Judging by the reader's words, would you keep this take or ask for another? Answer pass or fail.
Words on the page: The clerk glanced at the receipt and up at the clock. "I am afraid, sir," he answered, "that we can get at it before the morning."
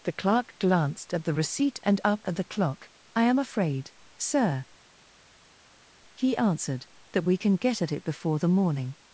pass